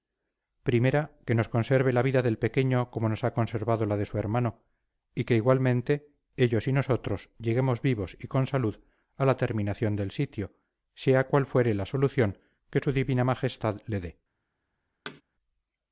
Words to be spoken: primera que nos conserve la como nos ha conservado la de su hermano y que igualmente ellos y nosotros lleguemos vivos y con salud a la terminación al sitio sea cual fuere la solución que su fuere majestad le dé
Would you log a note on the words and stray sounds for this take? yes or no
yes